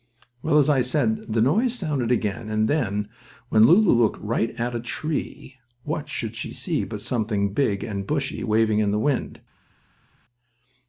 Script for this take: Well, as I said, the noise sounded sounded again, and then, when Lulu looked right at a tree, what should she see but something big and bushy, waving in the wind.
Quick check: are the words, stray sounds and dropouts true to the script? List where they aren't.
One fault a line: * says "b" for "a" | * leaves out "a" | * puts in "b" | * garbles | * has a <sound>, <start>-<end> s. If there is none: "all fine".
* leaves out "sounded"